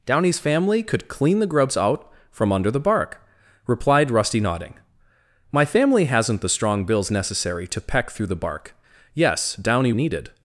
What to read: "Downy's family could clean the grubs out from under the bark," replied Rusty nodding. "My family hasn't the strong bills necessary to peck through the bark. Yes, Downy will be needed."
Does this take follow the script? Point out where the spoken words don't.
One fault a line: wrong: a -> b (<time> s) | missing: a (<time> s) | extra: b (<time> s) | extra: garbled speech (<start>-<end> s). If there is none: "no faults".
missing: will be (9.9 s)